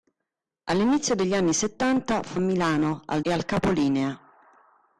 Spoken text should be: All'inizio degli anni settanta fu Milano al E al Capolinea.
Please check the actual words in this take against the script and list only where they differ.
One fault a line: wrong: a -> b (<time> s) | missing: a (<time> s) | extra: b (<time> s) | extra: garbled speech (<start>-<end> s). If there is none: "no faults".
no faults